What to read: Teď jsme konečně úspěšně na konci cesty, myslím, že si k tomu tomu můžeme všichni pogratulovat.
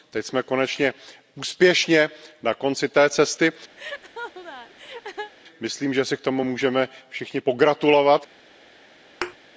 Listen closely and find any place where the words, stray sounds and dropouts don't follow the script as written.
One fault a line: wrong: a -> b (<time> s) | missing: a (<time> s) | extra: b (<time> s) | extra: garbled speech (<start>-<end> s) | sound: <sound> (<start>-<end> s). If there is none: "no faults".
extra: té (2.9 s)
sound: laugh (3.8-5.3 s)
missing: tomu (6.4 s)
sound: thud (9.2-9.4 s)